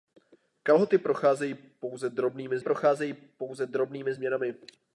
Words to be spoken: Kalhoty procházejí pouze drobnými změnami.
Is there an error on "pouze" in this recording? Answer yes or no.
no